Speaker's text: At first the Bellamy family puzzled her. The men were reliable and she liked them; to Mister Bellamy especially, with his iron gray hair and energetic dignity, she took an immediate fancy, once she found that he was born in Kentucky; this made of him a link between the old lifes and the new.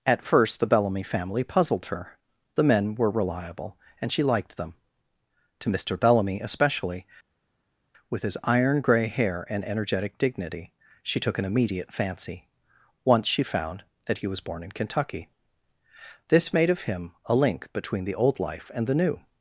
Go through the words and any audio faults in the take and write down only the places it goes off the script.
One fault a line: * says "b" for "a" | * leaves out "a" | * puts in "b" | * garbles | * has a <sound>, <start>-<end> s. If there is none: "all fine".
* says "life" for "lifes"